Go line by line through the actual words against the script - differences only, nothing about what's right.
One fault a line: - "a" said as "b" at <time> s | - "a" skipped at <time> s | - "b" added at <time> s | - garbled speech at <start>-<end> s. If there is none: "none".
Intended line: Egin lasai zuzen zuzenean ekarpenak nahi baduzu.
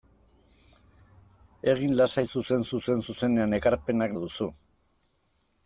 - "zuzen" added at 2.7 s
- "nahi" skipped at 4.2 s